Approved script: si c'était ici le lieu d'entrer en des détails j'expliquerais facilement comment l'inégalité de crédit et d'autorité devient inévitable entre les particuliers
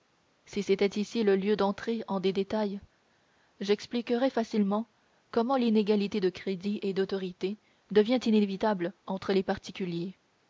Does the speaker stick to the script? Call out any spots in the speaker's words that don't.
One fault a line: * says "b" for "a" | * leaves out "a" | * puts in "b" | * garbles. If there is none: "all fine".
all fine